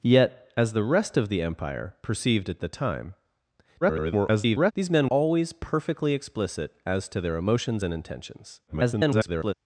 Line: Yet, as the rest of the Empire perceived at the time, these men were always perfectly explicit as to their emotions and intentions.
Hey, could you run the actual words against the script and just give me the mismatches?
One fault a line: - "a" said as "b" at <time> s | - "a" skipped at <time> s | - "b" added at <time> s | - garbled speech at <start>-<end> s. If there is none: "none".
- garbled speech at 3.8-4.7 s
- "were" skipped at 5.1 s
- garbled speech at 8.7-9.5 s